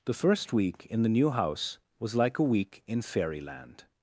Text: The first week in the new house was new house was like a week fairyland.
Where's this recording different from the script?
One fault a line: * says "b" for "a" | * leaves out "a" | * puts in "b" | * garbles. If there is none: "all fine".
* leaves out "new house was"
* puts in "in"